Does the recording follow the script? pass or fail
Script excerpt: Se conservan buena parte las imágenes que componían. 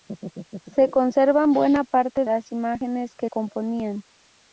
pass